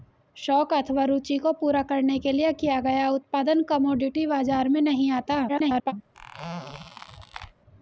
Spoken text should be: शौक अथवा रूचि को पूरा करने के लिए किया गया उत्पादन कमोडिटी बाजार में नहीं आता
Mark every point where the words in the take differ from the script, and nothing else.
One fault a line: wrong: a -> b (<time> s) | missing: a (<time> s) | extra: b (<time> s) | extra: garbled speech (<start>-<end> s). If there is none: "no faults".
extra: garbled speech (5.5-5.9 s)